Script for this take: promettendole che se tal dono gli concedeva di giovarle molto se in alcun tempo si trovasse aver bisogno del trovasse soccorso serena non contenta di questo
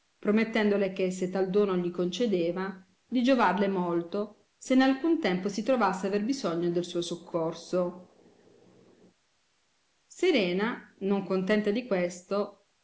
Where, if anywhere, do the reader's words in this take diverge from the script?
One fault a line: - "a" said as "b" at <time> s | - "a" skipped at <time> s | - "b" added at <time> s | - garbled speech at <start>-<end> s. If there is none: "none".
- "trovasse" said as "suo" at 6.8 s